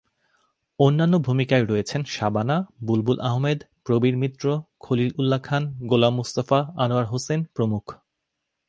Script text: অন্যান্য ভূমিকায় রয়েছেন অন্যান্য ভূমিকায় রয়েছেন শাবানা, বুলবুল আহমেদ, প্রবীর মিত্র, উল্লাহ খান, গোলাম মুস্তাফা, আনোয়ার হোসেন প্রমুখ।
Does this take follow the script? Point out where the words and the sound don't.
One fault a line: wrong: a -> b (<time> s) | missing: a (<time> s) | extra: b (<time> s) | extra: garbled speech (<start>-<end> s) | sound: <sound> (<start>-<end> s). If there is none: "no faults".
missing: অন্যান্য ভূমিকায় রয়েছেন (2.0 s)
extra: খলিল (4.8 s)